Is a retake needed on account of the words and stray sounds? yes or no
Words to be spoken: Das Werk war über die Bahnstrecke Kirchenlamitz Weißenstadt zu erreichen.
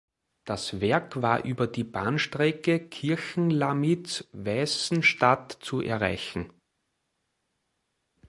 no